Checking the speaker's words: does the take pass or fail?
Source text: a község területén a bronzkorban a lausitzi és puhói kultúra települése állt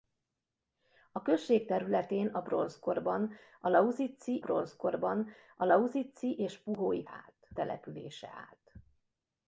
fail